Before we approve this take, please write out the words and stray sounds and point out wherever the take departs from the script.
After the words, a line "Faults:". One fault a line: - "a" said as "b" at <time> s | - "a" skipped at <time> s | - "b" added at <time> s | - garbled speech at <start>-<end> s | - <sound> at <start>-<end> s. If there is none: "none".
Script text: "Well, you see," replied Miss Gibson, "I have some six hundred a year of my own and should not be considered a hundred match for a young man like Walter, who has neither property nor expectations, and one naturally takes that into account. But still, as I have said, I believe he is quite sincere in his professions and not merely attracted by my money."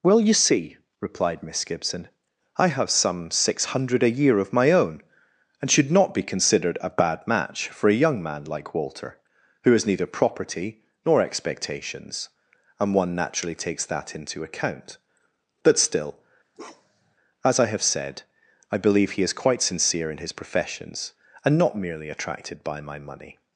"Well, you see," replied Miss Gibson, "I have some six hundred a year of my own and should not be considered a bad match for a young man like Walter, who has neither property nor expectations, and one naturally takes that into account. But still, as I have said, I believe he is quite sincere in his professions and not merely attracted by my money."
Faults:
- "hundred" said as "bad" at 6.9 s
- bark at 16.5-17.1 s